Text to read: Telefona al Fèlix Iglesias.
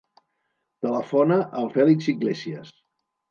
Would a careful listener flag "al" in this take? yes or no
no